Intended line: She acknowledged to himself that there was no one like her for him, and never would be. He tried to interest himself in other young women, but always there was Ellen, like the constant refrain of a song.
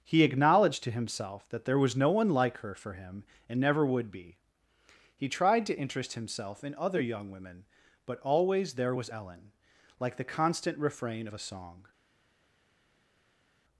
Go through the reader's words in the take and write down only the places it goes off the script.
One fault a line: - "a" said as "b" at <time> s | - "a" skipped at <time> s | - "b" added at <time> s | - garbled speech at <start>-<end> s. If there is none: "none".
- "She" said as "He" at 0.0 s